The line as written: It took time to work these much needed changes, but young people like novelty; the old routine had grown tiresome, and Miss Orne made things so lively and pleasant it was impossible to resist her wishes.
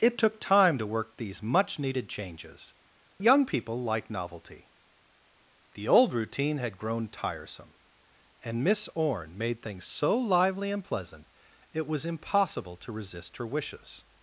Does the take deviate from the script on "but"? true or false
true